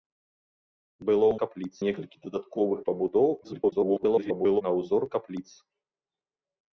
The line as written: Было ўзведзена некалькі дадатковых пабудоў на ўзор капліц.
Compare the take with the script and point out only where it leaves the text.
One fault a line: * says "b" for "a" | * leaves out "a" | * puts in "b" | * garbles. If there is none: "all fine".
* says "капліц" for "ўзведзена"
* garbles